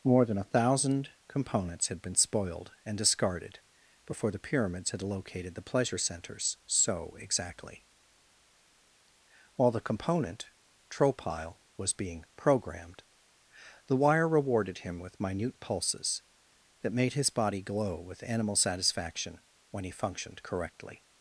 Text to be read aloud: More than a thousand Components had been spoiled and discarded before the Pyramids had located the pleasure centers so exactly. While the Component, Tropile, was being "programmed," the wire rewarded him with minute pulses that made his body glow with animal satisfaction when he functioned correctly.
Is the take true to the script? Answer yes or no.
yes